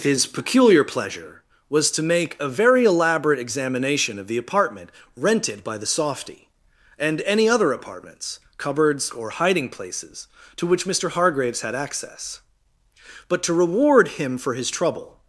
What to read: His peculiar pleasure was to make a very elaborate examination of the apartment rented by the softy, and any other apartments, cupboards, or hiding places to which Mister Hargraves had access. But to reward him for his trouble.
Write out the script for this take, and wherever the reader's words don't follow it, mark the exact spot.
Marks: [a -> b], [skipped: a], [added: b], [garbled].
His peculiar pleasure was to make a very elaborate examination of the apartment rented by the softy, and any other apartments, cupboards, or hiding places to which Mister Hargraves had access. But to reward him for his trouble.